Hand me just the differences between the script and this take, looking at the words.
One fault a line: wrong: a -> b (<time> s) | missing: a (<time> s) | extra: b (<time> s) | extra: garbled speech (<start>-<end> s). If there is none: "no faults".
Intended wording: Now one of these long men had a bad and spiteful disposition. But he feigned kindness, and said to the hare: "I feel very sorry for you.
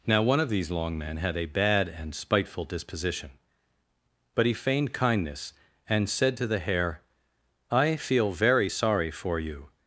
no faults